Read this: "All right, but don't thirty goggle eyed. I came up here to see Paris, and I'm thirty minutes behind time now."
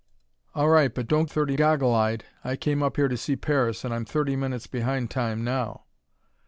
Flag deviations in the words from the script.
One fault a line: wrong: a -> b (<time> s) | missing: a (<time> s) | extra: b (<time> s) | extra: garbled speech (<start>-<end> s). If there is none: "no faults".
no faults